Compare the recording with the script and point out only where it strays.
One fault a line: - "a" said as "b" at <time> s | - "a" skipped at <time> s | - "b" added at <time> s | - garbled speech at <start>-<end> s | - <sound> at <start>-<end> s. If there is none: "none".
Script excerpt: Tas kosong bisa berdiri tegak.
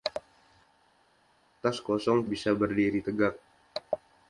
none